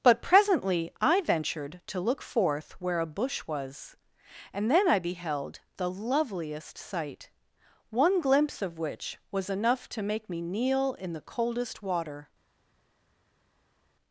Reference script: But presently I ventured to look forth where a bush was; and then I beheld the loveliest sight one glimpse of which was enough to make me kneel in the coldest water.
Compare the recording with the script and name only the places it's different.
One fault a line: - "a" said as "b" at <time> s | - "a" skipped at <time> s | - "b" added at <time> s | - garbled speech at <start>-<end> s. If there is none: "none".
none